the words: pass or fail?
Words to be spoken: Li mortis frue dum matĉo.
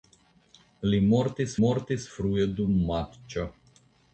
fail